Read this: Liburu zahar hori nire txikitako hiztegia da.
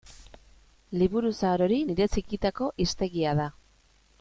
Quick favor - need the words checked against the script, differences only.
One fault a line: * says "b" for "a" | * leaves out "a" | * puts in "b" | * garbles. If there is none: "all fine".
all fine